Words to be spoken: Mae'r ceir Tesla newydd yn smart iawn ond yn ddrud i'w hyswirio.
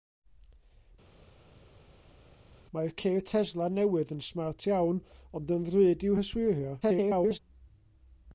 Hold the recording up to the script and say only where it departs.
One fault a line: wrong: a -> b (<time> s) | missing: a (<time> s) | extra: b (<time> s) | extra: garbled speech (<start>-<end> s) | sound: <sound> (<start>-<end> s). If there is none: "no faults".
extra: garbled speech (6.8-7.4 s)